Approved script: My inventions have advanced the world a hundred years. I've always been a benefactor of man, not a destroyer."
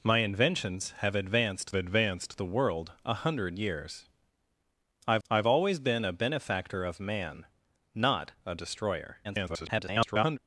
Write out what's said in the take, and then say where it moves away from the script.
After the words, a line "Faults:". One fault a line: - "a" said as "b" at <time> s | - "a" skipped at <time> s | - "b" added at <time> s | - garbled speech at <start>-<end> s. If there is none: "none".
My inventions have advanced advanced the world a hundred years. I've I've always been a benefactor of man, not a destroyer." [garbled]
Faults:
- "advanced" added at 1.7 s
- "I've" added at 5.3 s
- garbled speech at 9.2-10.4 s